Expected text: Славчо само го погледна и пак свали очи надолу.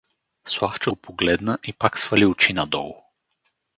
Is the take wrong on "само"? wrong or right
wrong